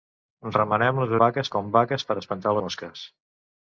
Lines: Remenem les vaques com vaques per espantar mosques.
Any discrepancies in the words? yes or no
no